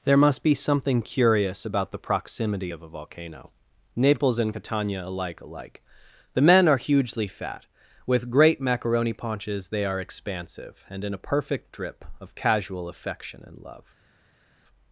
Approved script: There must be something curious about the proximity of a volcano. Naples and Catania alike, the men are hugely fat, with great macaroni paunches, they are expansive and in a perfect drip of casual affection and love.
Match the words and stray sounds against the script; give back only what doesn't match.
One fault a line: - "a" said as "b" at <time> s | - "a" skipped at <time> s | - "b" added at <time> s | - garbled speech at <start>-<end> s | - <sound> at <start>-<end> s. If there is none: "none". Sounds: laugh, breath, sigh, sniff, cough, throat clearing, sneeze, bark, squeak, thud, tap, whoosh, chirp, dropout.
- "alike" added at 5.4 s